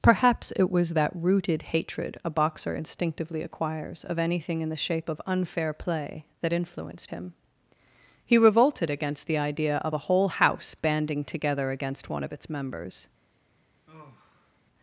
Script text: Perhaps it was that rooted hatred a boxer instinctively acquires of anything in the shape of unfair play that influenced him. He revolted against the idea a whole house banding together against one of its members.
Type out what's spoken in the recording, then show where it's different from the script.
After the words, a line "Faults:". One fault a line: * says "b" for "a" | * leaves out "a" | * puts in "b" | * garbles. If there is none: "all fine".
Perhaps it was that rooted hatred a boxer instinctively acquires of anything in the shape of unfair play that influenced him. He revolted against the idea of a whole house banding together against one of its members.
Faults:
* puts in "of"